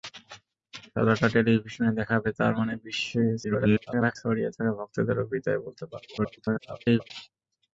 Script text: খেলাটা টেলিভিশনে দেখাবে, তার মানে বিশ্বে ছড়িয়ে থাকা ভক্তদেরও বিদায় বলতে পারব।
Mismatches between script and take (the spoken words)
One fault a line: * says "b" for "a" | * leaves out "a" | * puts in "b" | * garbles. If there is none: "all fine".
* garbles
* garbles